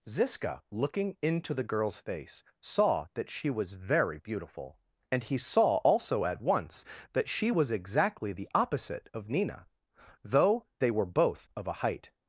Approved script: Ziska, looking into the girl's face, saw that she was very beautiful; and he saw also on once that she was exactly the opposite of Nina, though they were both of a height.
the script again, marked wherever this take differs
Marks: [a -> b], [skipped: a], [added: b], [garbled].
Ziska, looking into the girl's face, saw that she was very beautiful; and he saw also [on -> at] once that she was exactly the opposite of Nina, though they were both of a height.